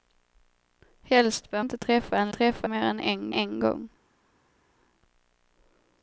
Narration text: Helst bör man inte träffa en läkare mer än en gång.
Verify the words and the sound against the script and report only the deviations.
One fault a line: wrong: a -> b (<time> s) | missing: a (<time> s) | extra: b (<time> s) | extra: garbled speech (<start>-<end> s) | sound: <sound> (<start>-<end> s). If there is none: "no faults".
missing: man (1.6 s)
wrong: läkare -> träffa (2.3 s)
extra: en (3.3 s)